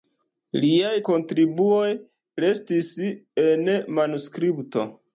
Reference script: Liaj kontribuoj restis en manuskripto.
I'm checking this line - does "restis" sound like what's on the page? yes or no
yes